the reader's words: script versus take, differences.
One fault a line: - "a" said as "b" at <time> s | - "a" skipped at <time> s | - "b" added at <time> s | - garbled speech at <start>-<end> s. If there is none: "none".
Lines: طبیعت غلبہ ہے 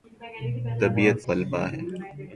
none